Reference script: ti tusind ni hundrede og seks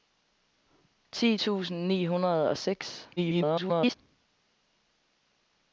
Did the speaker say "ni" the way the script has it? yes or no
yes